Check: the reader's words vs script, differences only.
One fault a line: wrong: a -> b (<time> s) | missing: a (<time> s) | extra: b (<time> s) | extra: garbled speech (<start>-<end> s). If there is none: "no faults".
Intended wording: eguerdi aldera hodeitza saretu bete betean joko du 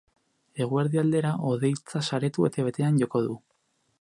no faults